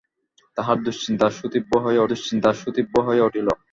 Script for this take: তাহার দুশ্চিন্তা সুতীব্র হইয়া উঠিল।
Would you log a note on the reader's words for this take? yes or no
yes